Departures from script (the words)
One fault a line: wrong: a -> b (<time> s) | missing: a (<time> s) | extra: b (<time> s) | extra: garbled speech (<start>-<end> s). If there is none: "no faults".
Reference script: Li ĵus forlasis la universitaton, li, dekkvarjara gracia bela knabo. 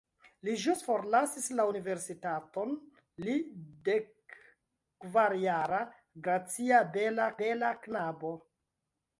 extra: bela (7.4 s)